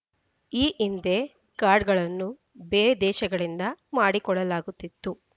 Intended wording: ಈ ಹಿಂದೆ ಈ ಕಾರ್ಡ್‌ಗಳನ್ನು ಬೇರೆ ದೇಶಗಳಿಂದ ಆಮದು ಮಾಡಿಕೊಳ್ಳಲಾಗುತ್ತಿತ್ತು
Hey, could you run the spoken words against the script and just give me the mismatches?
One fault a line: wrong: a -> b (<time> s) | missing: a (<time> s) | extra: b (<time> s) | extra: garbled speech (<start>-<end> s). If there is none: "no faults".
missing: ಈ (1.2 s)
missing: ಆಮದು (3.6 s)